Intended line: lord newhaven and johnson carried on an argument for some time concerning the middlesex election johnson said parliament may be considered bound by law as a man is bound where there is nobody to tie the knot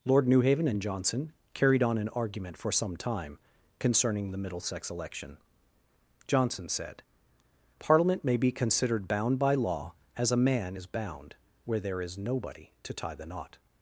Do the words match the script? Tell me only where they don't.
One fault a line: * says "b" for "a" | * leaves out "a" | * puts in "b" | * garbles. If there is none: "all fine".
all fine